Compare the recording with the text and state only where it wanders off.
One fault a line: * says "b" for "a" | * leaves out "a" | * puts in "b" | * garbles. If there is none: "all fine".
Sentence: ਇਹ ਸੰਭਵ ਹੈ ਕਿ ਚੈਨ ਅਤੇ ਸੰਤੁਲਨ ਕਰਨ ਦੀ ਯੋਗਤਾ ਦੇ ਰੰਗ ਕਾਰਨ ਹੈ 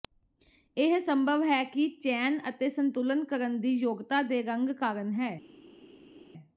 all fine